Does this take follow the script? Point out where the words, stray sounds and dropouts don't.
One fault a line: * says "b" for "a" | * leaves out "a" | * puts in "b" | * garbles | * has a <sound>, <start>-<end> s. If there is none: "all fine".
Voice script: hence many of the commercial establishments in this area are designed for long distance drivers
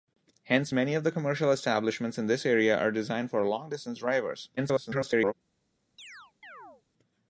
* garbles
* has a chirp, 6.0-6.8 s